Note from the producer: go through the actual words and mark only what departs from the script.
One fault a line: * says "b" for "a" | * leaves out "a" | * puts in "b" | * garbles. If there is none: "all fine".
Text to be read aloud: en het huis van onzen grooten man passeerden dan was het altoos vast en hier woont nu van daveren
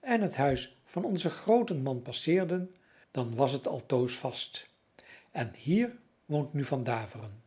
all fine